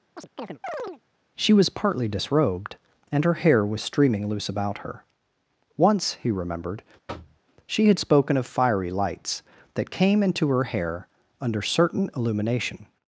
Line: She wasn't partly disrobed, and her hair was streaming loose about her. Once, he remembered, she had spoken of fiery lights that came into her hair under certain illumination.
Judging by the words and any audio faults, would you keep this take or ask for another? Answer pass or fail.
fail